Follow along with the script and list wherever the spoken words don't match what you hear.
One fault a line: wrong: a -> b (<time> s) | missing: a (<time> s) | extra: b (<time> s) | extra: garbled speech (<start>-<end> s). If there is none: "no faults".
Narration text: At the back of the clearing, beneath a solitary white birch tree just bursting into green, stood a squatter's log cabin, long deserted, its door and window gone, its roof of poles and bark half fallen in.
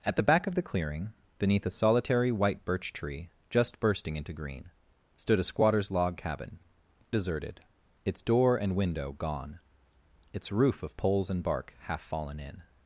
missing: long (6.6 s)